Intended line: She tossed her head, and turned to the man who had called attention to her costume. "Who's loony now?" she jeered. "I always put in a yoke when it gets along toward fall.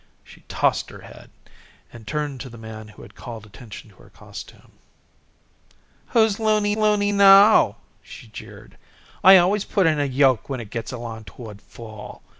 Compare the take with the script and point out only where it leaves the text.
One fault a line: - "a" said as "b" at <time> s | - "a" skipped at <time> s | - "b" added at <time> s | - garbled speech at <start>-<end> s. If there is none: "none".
- "loony" added at 6.8 s